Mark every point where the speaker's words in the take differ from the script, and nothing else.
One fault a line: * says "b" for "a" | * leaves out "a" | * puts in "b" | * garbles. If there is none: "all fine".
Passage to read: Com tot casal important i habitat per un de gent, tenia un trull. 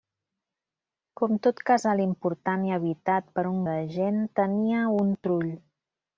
all fine